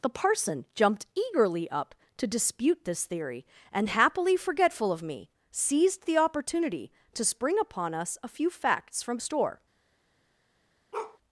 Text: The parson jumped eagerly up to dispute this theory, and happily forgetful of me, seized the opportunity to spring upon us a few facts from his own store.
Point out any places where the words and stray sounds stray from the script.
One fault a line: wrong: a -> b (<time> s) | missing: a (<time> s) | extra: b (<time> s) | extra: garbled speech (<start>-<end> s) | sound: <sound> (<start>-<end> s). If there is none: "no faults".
missing: his own (9.2 s)
sound: bark (10.9-11.2 s)